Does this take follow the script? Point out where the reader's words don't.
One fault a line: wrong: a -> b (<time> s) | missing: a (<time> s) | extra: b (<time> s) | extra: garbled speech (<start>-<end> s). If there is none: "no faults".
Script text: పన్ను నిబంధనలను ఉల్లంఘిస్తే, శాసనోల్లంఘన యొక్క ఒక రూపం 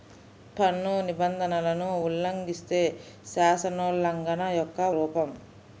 missing: ఒక (4.8 s)